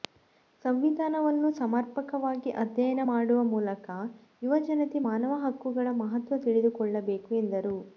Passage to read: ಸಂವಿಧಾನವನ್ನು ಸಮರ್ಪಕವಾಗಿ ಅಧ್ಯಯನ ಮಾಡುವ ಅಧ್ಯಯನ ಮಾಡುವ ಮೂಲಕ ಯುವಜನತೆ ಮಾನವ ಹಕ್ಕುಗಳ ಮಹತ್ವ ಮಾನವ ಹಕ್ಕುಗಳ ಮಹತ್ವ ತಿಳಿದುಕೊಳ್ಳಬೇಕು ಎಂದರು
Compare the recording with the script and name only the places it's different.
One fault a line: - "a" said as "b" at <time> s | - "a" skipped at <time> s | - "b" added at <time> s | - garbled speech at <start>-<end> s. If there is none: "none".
- "ಅಧ್ಯಯನ ಮಾಡುವ" skipped at 3.4 s
- "ಮಾನವ ಹಕ್ಕುಗಳ ಮಹತ್ವ" skipped at 6.4 s